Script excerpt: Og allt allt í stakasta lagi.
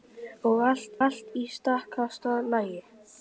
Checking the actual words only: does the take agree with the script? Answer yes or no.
yes